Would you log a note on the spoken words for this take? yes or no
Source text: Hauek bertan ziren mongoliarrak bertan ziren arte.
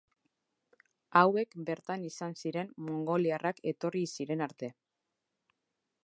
yes